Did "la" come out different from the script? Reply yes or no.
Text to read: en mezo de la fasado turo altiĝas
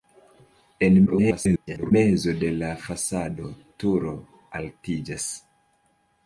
no